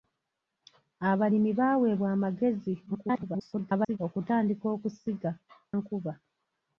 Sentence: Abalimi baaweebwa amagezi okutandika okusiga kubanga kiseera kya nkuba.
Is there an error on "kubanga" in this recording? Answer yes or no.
yes